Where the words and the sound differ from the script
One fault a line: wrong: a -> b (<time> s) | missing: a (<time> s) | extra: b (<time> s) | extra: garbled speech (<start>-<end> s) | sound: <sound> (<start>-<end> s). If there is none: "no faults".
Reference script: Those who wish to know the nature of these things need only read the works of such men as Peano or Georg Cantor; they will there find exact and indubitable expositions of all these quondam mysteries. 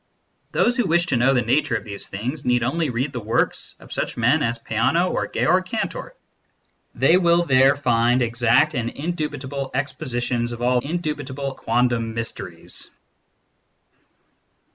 wrong: these -> indubitable (10.8 s)